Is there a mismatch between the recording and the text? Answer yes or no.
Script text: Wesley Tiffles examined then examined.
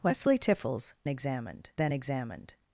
no